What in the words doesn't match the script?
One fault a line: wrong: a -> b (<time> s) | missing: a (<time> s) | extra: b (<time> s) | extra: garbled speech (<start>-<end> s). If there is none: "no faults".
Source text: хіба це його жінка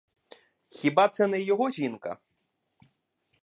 extra: не (1.3 s)